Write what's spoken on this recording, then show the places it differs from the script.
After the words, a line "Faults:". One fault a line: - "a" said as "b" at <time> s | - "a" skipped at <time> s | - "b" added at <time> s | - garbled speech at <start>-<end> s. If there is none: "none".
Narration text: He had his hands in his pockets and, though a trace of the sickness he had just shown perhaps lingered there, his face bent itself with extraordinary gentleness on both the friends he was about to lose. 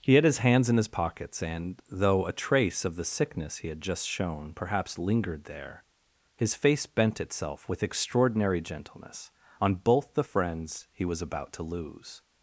He had his hands in his pockets and, though a trace of the sickness he had just shown perhaps lingered there, his face bent itself with extraordinary gentleness on both the friends he was about to lose.
Faults:
none